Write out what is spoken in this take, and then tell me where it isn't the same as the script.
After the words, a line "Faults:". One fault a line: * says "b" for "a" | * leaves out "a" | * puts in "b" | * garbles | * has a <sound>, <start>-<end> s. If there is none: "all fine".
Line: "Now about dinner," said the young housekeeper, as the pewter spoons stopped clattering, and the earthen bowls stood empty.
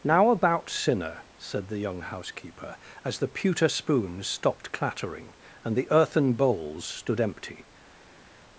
"Now about sinner," said the young housekeeper, as the pewter spoons stopped clattering, and the earthen bowls stood empty.
Faults:
* says "sinner" for "dinner"